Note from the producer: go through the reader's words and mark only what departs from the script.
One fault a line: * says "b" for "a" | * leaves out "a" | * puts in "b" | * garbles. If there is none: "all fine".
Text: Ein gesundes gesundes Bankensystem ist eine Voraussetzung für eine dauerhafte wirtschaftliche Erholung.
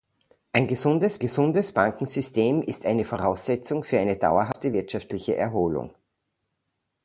all fine